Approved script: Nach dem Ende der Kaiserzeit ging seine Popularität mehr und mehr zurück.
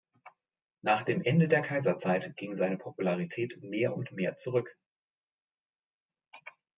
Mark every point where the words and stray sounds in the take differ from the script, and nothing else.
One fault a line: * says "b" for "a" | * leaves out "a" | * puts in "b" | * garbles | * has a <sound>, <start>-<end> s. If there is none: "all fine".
all fine